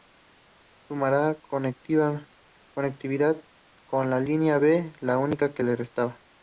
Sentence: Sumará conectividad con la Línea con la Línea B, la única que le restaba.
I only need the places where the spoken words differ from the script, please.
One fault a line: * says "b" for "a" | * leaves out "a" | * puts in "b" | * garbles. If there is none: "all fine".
* leaves out "con la Línea"